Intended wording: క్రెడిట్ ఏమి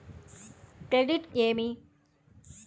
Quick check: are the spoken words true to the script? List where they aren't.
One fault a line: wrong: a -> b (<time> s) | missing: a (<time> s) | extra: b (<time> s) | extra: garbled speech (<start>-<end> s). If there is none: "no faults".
no faults